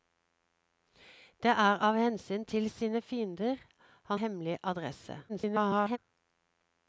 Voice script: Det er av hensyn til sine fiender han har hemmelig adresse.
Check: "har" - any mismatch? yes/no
yes